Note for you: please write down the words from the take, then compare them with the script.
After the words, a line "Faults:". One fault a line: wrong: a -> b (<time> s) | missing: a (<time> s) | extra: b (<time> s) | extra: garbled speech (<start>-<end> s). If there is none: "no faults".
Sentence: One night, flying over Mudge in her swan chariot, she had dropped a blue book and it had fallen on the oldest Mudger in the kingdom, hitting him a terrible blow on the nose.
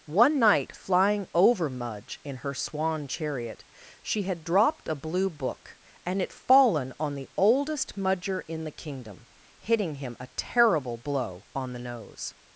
One night, flying over Mudge in her swan chariot, she had dropped a blue book and it fallen on the oldest Mudger in the kingdom, hitting him a terrible blow on the nose.
Faults:
missing: had (6.3 s)